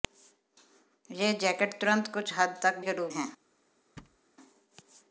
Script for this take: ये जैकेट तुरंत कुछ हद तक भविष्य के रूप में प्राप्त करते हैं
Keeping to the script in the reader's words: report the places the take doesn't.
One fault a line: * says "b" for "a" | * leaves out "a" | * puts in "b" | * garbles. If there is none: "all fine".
* leaves out "भविष्य"
* leaves out "में प्राप्त करते"